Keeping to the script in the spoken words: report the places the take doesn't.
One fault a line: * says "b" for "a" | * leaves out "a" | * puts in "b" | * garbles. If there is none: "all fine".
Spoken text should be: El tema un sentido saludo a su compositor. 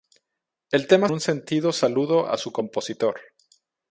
all fine